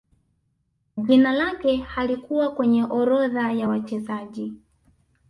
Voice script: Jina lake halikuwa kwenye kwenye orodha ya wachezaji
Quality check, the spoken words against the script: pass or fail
fail